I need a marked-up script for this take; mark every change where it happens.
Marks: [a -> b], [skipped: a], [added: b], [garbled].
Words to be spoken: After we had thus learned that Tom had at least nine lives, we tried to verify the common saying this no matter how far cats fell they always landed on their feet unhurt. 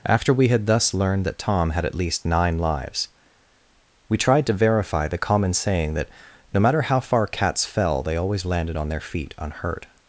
After we had thus learned that Tom had at least nine lives, we tried to verify the common saying [this -> that] no matter how far cats fell they always landed on their feet unhurt.